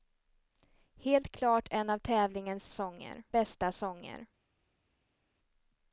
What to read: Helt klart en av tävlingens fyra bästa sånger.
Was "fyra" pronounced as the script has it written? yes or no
no